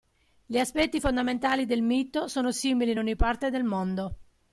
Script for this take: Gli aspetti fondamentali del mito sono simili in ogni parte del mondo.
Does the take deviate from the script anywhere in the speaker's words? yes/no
no